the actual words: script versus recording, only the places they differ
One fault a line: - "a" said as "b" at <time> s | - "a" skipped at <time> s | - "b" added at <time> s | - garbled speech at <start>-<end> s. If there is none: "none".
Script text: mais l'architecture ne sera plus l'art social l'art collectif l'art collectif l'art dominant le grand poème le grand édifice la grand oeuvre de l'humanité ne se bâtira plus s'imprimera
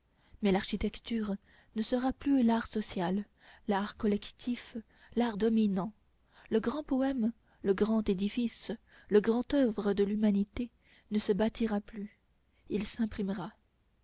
- "collectif l'art" skipped at 5.4 s
- "la" said as "le" at 9.1 s
- "il" added at 12.7 s